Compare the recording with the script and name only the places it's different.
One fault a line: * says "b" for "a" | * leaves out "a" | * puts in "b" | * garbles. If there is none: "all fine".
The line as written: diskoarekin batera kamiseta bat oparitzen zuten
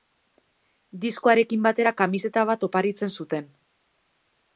all fine